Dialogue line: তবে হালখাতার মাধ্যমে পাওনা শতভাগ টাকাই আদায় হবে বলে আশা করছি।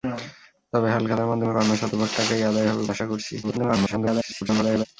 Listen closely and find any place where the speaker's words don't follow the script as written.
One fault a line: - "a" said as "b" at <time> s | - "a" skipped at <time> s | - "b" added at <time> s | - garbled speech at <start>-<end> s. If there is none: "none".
- "বলে" skipped at 2.8 s
- garbled speech at 3.4-4.9 s